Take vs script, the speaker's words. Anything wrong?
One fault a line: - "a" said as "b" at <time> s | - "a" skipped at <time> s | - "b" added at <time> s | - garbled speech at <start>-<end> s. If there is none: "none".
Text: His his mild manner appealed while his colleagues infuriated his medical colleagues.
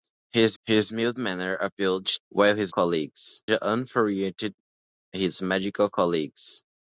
none